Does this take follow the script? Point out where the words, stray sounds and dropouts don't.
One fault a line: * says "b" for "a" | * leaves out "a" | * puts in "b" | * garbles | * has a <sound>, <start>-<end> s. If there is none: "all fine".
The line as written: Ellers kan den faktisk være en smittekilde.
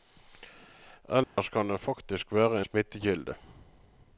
* has a dropout, 1.2-1.4 s